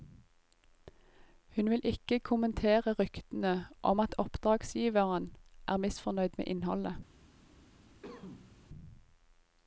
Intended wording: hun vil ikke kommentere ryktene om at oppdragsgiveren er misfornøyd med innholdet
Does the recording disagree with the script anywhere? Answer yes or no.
no